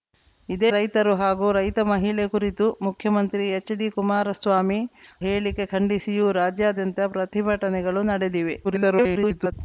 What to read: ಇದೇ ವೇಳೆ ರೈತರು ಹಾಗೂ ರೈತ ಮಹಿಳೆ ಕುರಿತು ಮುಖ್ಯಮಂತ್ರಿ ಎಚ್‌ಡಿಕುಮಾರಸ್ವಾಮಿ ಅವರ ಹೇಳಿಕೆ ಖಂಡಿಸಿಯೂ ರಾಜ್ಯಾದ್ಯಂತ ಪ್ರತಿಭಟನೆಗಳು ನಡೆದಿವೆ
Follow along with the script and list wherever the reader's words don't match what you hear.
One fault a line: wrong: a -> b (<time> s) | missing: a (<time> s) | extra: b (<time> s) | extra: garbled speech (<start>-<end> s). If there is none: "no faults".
missing: ವೇಳೆ (0.7 s)
missing: ಅವರ (4.8 s)
extra: garbled speech (8.6-9.5 s)